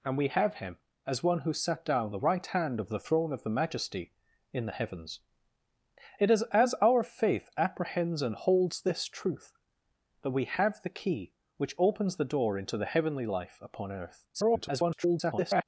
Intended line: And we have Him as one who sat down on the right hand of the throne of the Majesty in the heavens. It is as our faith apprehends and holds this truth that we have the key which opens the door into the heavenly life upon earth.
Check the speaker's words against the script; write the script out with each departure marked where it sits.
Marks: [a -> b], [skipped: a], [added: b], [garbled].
And we have Him as one who sat down [skipped: on] the right hand of the throne of the Majesty in the heavens. It is as our faith apprehends and holds this truth that we have the key which opens the door into the heavenly life upon earth. [garbled]